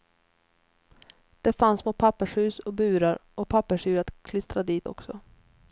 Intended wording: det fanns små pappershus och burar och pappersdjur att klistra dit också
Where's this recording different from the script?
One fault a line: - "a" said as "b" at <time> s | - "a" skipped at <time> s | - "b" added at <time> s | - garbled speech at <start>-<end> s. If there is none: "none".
none